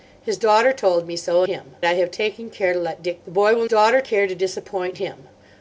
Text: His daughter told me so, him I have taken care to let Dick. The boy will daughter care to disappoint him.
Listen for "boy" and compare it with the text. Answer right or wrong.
right